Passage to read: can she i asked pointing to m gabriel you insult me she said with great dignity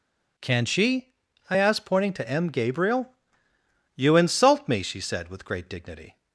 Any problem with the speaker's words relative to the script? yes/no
no